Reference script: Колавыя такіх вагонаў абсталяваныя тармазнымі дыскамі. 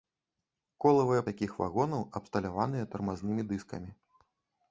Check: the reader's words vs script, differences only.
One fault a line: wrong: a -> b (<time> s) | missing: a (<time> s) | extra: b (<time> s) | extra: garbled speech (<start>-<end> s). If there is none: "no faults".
no faults